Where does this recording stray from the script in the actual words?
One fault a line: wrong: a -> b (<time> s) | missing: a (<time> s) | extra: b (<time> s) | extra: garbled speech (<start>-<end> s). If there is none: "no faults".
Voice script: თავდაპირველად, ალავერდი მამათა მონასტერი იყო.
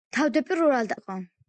missing: ალავერდი მამათა მონასტერი (0.9 s)